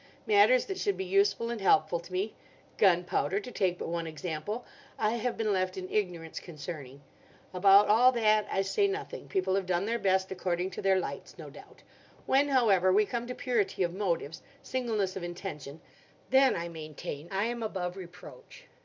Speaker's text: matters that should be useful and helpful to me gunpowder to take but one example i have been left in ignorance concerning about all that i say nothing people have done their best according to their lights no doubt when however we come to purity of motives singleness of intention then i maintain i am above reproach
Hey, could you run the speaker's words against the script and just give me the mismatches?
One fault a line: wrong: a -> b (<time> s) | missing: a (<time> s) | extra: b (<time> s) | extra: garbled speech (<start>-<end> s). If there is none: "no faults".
no faults